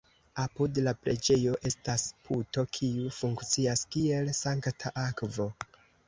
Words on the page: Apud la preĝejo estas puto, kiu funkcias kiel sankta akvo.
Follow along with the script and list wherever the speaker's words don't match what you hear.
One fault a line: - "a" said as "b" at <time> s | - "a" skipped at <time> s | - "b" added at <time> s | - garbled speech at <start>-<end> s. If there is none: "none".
none